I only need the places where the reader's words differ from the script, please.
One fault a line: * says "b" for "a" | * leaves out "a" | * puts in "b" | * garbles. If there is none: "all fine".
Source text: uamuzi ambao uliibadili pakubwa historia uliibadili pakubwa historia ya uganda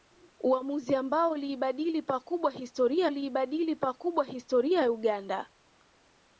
all fine